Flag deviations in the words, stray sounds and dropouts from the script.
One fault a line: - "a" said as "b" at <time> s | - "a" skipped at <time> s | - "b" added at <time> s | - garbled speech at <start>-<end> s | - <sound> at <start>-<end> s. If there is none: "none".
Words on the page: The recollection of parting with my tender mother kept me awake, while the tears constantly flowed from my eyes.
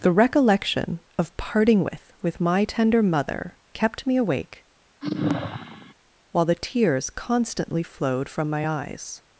- "with" added at 2.2 s
- sigh at 5.0-5.9 s